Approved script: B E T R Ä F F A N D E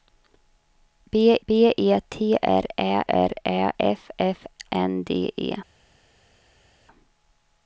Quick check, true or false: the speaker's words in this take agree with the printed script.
false